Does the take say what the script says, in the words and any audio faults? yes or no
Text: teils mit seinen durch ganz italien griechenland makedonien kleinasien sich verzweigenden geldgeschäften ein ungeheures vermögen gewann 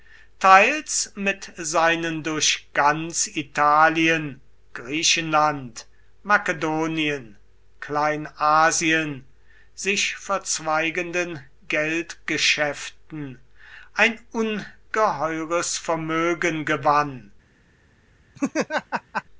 no